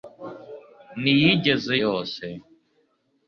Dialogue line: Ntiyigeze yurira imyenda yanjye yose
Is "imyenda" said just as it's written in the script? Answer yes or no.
no